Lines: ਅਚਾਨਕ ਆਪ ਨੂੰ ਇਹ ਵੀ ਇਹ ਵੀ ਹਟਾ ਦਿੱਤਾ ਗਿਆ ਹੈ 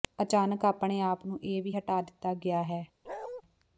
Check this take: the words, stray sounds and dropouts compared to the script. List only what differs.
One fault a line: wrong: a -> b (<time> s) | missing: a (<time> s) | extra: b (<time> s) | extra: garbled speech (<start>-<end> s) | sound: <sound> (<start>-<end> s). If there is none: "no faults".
extra: ਆਪਣੇ (0.7 s)
missing: ਇਹ ਵੀ (1.7 s)
sound: bark (3.0-3.4 s)